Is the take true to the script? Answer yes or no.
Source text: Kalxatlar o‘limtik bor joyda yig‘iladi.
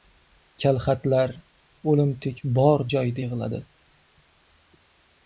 yes